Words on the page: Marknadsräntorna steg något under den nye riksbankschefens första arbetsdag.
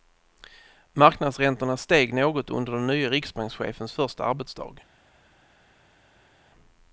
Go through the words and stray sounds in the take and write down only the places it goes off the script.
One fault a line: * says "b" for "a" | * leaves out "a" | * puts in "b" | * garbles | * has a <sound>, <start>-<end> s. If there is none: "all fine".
all fine